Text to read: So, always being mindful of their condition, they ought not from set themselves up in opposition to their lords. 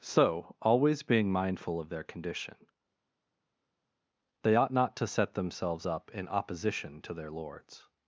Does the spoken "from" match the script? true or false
false